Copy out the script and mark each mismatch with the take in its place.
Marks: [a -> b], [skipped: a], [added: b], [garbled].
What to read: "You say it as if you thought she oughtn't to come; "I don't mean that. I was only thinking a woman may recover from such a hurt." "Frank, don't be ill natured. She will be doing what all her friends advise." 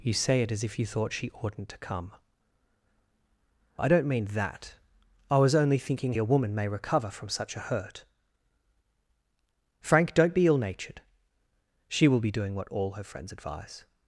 "You say it as if you thought she oughtn't to come; "I don't mean that. I was only thinking a woman may recover from such a hurt." "Frank, don't be ill natured. She will be doing what all her friends advise."